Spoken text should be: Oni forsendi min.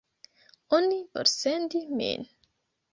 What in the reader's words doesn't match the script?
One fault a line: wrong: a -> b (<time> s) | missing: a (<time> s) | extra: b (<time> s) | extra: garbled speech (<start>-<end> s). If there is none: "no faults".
no faults